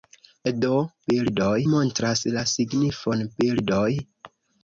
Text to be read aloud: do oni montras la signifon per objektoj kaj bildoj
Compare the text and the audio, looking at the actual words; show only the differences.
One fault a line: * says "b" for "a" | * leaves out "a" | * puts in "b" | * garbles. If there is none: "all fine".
* says "bildoj" for "oni"
* leaves out "per objektoj kaj"